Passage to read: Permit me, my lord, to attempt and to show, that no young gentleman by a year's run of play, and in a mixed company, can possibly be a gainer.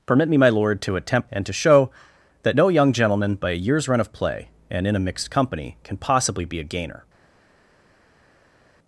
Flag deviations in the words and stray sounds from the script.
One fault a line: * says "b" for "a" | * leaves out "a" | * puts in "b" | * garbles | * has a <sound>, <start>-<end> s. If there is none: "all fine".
all fine